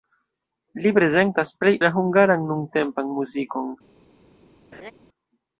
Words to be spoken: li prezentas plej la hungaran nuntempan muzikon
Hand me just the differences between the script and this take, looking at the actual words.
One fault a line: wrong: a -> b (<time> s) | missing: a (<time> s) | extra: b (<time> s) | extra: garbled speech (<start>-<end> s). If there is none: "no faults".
no faults